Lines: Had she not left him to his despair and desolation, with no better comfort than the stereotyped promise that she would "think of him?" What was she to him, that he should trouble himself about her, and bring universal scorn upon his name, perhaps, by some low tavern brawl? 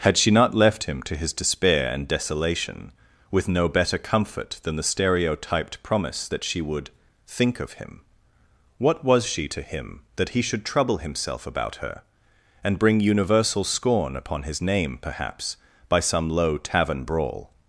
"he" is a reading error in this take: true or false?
false